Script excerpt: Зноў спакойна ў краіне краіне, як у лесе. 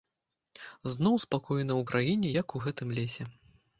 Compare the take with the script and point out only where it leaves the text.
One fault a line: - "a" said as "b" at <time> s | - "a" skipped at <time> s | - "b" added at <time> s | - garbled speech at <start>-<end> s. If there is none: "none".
- "краіне" skipped at 2.3 s
- "гэтым" added at 2.6 s